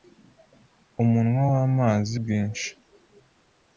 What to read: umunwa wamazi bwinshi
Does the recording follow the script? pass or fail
pass